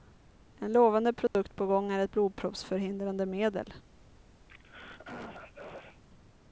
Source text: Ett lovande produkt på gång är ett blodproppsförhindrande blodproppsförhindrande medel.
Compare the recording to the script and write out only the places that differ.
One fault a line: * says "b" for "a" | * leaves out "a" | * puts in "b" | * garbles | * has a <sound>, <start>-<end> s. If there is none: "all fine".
* says "En" for "Ett"
* has a dropout, 1.3-1.3 s
* leaves out "blodproppsförhindrande"
* has a throat clearing, 4.5-6.0 s